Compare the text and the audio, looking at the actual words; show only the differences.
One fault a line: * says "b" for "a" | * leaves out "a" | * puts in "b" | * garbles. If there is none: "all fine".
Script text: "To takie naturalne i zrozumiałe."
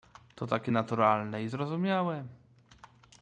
all fine